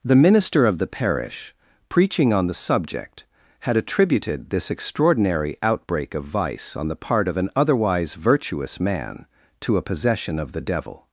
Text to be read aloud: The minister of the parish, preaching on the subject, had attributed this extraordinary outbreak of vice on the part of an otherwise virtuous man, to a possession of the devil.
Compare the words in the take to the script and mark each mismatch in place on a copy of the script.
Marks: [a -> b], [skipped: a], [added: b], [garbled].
The minister of the parish, preaching on the subject, had attributed this extraordinary outbreak of vice on the part of an otherwise virtuous man, to a possession of the devil.